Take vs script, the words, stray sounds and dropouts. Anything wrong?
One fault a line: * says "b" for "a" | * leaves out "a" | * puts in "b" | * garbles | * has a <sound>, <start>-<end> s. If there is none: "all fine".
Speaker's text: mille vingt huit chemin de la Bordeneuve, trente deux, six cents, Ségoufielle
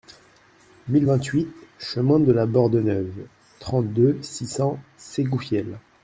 all fine